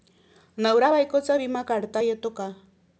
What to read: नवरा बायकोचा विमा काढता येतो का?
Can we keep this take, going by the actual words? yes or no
yes